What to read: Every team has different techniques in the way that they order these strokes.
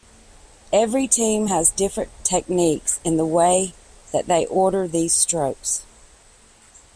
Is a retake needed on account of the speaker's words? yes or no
no